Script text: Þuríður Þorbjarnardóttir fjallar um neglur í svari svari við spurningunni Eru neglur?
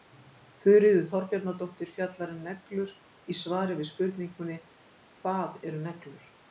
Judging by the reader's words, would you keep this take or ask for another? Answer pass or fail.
fail